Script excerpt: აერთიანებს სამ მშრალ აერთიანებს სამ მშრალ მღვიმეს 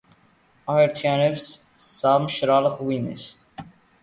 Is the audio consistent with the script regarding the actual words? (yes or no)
no